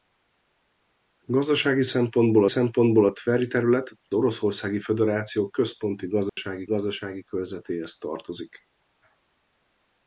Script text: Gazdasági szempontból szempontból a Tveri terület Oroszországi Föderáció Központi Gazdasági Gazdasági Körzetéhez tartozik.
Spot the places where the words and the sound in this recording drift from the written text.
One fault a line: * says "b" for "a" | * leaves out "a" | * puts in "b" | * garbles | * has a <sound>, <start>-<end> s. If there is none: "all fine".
* has a dropout, 6.3-6.4 s